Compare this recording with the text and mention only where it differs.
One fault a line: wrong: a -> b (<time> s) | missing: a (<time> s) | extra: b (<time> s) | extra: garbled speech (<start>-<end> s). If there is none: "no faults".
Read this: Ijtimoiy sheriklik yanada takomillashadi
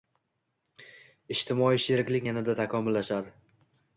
no faults